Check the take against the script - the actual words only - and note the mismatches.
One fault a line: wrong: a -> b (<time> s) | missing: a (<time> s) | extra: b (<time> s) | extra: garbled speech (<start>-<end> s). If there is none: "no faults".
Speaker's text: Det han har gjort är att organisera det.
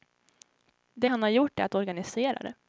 no faults